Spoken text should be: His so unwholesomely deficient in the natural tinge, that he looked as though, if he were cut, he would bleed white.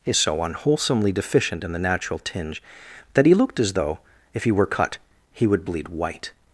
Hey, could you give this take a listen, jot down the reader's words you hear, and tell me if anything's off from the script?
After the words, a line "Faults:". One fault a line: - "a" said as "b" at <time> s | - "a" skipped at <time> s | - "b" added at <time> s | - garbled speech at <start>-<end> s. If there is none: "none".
His so unwholesomely deficient in the natural tinge, that he looked as though, if he were cut, he would bleed white.
Faults:
none